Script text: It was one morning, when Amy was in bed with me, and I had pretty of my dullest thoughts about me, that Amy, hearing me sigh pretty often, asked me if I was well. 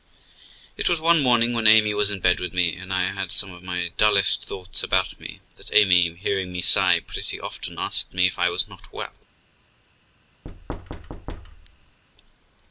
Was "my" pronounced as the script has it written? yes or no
yes